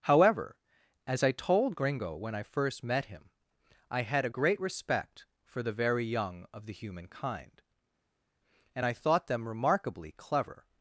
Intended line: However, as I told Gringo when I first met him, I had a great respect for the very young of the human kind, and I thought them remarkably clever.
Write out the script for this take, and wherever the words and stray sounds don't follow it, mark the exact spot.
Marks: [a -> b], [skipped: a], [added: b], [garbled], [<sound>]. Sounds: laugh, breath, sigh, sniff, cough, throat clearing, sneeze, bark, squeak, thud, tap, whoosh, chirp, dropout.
However, as I told Gringo when I first met him, I had a great respect for the very young of the human kind, and I thought them remarkably clever.